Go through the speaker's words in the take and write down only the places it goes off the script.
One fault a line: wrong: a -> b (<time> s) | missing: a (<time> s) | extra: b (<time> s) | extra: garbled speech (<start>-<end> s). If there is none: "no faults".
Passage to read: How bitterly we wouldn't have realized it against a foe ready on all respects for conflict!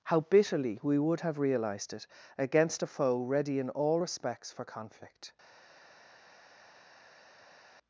wrong: wouldn't -> would (1.0 s)
wrong: on -> in (3.6 s)